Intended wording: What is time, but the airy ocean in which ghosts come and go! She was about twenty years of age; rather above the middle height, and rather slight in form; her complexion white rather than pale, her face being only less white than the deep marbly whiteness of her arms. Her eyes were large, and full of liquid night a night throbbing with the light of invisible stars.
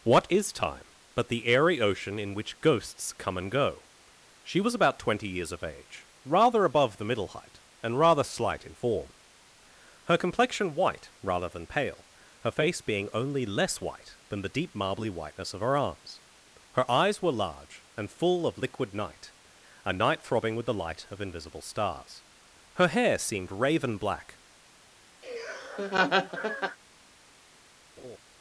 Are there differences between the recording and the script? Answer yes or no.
yes